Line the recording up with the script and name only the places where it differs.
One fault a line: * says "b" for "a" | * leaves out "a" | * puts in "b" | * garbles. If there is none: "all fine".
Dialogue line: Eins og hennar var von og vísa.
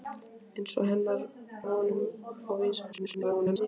* leaves out "var"
* garbles